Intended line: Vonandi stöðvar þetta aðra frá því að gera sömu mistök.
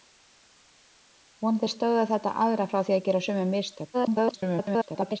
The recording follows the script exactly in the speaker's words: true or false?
false